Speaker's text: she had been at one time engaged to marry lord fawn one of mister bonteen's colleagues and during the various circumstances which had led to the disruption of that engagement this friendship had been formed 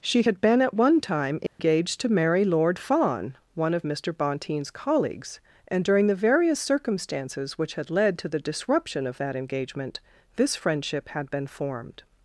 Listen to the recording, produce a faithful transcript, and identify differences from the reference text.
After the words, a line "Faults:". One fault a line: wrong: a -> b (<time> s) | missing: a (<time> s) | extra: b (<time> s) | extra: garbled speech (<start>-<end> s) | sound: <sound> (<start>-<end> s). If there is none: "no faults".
she had been at one time engaged to marry lord fawn one of mister bonteen's colleagues and during the various circumstances which had led to the disruption of that engagement this friendship had been formed
Faults:
sound: dropout (1.5-1.6 s)